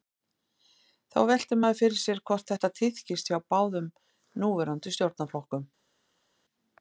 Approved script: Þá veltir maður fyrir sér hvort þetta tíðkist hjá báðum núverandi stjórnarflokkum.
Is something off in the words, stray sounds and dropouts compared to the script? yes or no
no